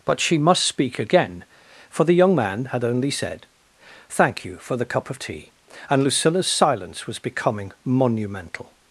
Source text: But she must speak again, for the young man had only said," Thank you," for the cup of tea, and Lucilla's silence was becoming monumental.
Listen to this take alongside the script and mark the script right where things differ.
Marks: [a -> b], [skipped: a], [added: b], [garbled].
But she must speak again, for the young man had only said," Thank you," for the cup of tea, and Lucilla's silence was becoming monumental.